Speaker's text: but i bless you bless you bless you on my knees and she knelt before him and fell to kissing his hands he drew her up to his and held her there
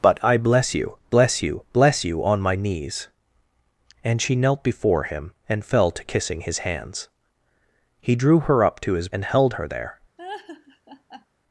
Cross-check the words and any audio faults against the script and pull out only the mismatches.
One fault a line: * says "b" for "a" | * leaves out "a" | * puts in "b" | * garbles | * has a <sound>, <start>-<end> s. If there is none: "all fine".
* has a laugh, 10.2-11.3 s